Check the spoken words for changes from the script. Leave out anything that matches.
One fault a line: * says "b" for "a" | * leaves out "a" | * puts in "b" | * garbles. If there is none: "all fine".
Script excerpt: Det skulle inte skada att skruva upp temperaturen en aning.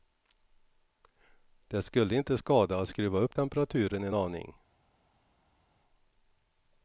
all fine